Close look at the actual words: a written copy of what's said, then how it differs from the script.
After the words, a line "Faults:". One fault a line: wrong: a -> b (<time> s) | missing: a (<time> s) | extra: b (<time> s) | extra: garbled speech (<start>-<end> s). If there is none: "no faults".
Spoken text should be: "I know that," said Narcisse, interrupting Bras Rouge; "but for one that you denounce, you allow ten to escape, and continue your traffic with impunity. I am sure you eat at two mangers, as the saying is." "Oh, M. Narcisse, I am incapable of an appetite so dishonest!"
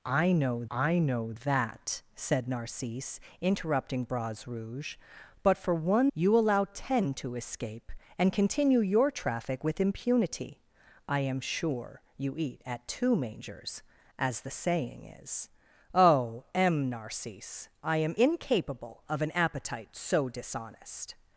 "I know I know that," said Narcisse, interrupting Bras Rouge; "but for one you allow ten to escape, and continue your traffic with impunity. I am sure you eat at two mangers, as the saying is." "Oh, M. Narcisse, I am incapable of an appetite so dishonest!"
Faults:
extra: I know (0.7 s)
missing: that you denounce (6.1 s)